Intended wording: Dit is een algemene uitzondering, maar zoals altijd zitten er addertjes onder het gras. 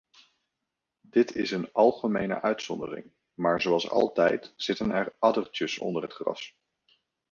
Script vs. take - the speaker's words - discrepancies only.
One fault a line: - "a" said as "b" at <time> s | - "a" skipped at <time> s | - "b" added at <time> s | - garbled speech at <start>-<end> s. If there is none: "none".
none